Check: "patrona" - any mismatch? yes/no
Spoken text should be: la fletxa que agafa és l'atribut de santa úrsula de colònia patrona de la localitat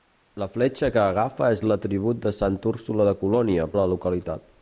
yes